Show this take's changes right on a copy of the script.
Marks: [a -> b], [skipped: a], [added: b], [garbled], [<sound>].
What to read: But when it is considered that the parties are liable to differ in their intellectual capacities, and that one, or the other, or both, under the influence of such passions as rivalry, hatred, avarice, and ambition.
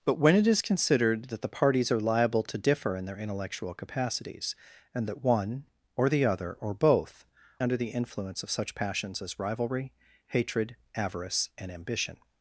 But when it is considered that the parties are liable to differ in their intellectual capacities, and that one, or the other, or both, under the influence of such passions as rivalry, hatred, avarice, and ambition.